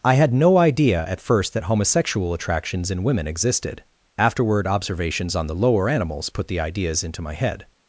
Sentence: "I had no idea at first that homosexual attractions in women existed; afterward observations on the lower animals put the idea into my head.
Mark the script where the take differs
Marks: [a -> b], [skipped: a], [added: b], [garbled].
"I had no idea at first that homosexual attractions in women existed; afterward observations on the lower animals put the [idea -> ideas] into my head.